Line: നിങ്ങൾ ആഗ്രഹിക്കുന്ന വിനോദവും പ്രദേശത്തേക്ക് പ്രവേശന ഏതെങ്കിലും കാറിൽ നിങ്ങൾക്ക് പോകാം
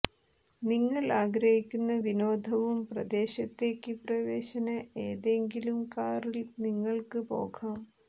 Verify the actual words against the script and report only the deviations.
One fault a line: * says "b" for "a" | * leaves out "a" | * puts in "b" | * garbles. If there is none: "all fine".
all fine